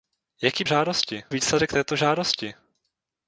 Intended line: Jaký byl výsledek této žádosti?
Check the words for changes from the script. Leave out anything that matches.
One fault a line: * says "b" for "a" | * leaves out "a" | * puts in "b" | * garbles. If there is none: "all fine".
* says "žádosti" for "byl"